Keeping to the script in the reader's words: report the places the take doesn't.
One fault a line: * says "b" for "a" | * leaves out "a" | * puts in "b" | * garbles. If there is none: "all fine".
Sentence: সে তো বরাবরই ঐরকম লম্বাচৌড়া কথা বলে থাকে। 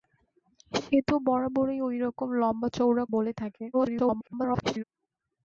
* leaves out "কথা"
* garbles